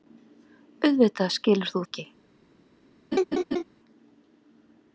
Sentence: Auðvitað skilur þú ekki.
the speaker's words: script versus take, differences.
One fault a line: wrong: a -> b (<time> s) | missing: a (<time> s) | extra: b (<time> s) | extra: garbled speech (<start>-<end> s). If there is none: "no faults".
no faults